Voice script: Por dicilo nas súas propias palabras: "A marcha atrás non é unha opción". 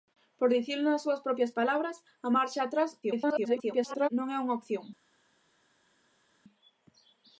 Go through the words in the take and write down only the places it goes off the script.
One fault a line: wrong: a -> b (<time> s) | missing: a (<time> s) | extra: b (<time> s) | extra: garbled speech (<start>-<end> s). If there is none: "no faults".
extra: garbled speech (3.0-4.1 s)